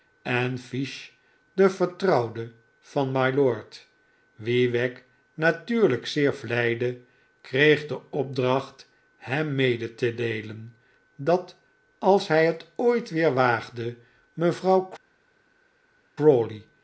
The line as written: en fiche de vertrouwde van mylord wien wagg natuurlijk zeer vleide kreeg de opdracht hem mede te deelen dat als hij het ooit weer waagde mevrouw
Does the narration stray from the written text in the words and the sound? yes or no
no